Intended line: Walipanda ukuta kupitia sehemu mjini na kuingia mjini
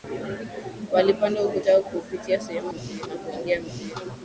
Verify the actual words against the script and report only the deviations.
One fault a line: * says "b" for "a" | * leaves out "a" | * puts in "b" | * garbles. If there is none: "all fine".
all fine